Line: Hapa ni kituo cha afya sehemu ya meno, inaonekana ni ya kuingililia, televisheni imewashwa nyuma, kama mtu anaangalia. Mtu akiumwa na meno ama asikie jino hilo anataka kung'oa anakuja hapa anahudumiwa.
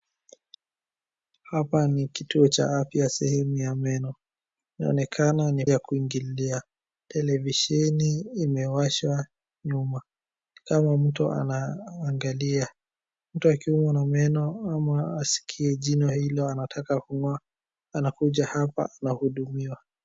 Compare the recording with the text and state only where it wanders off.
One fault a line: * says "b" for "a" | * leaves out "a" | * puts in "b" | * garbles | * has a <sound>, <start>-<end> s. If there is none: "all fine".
all fine